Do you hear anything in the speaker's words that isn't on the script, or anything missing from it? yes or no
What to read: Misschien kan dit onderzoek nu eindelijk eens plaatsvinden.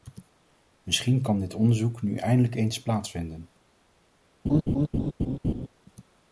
no